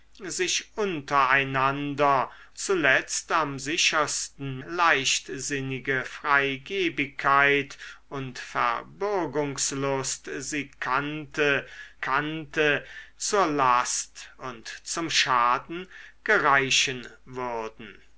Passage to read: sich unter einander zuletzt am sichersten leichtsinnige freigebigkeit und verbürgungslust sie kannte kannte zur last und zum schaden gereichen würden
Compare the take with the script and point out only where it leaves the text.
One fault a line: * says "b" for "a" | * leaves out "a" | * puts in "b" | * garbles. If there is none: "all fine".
all fine